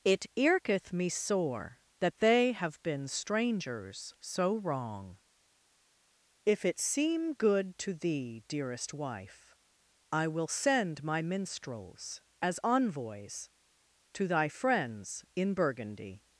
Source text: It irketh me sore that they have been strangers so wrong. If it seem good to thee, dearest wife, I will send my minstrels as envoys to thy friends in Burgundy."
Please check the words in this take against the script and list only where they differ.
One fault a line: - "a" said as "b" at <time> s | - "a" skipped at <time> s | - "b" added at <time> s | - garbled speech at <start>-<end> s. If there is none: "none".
none